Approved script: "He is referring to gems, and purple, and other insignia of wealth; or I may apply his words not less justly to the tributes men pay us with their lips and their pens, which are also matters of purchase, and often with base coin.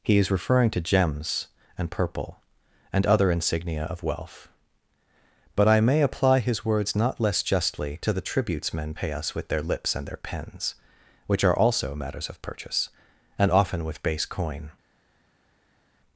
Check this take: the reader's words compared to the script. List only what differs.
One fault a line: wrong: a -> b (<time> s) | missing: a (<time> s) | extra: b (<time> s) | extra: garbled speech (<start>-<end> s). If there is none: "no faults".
wrong: or -> but (5.5 s)